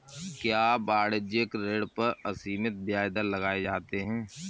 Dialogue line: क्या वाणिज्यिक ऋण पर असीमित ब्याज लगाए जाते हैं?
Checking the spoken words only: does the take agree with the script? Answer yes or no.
no